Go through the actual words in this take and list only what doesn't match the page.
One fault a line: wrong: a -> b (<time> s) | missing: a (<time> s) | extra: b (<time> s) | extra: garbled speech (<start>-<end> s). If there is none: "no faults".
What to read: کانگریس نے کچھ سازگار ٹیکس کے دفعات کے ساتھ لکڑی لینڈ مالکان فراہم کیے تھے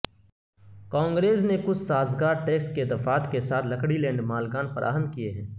wrong: تھے -> ہیں (5.3 s)